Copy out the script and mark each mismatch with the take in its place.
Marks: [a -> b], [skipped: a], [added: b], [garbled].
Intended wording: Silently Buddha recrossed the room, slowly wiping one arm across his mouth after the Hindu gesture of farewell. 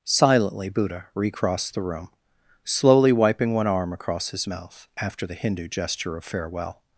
Silently Buddha recrossed the room, slowly wiping one arm across his mouth after the Hindu gesture of farewell.